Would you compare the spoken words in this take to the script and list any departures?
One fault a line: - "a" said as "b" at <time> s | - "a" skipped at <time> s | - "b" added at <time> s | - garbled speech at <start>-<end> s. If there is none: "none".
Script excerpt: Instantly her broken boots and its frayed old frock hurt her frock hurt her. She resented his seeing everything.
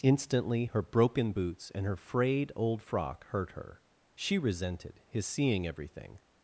- "its" said as "her" at 1.9 s
- "frock hurt her" skipped at 3.8 s